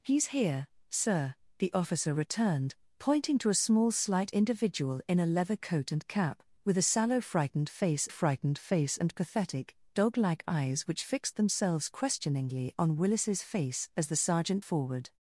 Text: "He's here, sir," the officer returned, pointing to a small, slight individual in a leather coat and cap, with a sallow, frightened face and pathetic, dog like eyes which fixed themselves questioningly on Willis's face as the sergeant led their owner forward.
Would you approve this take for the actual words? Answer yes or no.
no